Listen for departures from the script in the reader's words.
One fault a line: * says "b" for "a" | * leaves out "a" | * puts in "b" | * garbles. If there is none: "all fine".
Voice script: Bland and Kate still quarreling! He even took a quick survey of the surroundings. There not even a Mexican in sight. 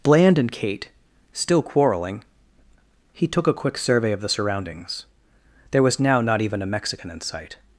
* leaves out "even"
* puts in "was now"